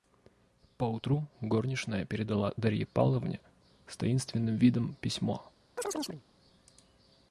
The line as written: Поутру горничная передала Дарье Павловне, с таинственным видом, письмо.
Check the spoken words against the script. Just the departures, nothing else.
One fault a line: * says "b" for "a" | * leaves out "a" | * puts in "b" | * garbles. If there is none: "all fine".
all fine